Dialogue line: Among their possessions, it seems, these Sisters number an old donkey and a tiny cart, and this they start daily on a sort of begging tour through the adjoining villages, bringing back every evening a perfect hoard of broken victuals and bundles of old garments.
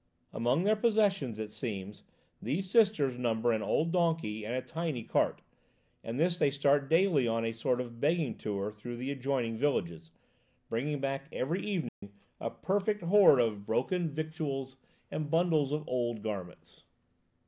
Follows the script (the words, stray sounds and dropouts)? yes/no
no